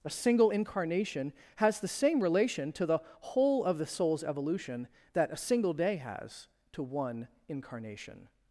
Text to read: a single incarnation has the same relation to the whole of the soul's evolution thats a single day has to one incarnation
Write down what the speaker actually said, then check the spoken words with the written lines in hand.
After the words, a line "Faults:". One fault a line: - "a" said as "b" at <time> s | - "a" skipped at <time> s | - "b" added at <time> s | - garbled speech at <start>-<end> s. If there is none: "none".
a single incarnation has the same relation to the whole of the soul's evolution that a single day has to one incarnation
Faults:
- "thats" said as "that" at 5.1 s